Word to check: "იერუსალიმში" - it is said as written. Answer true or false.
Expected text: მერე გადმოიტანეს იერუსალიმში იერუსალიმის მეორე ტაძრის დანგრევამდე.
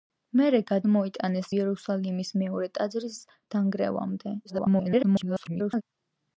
false